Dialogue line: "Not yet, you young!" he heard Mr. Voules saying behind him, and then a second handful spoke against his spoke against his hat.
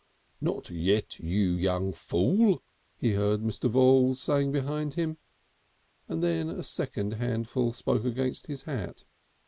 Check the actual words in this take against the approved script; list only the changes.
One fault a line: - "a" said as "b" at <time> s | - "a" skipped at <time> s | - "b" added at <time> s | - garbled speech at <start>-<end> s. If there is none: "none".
- "fool" added at 1.9 s
- "spoke against his" skipped at 8.6 s